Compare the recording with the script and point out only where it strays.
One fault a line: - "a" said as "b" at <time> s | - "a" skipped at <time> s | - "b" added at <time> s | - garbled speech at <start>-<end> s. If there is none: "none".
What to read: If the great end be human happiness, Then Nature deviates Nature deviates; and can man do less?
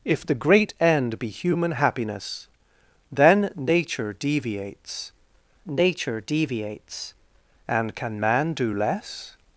none